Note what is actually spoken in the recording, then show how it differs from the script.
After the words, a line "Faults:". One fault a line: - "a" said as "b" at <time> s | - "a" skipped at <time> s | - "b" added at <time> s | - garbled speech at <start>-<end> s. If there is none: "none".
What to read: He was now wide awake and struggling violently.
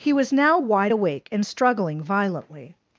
He was now wide awake and struggling violently.
Faults:
none